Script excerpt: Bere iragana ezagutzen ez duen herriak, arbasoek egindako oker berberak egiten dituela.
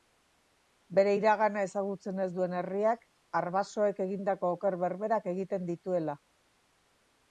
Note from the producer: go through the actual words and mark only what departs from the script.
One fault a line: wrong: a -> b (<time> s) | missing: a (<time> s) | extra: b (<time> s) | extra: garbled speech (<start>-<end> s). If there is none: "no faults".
no faults